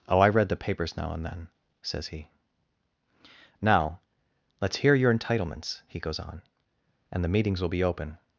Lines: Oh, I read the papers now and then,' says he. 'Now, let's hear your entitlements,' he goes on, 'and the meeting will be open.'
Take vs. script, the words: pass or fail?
fail